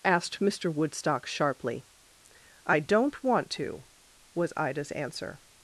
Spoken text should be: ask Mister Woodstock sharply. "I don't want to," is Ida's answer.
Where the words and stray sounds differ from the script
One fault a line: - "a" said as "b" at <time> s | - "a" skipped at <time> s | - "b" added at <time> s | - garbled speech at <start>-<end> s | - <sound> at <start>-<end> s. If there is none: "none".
- "ask" said as "asked" at 0.0 s
- "is" said as "was" at 4.3 s